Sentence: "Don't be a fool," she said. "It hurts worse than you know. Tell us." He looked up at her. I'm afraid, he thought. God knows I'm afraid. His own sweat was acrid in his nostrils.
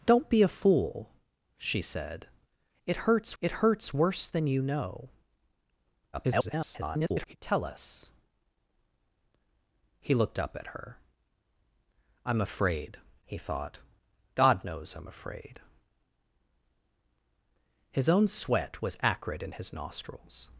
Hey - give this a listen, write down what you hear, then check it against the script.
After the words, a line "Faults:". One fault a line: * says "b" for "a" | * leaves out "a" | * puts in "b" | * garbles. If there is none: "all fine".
"Don't be a fool," she said. "It hurts it hurts worse than you know. [garbled] Tell us." He looked up at her. I'm afraid, he thought. God knows I'm afraid. His own sweat was acrid in his nostrils.
Faults:
* puts in "it hurts"
* garbles